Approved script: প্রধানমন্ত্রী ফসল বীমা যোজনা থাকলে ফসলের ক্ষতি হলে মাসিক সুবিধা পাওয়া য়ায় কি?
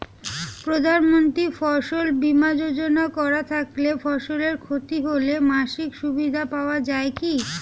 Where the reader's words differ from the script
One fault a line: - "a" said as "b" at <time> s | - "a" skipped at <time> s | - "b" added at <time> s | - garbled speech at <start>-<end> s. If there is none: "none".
- "করা" added at 3.2 s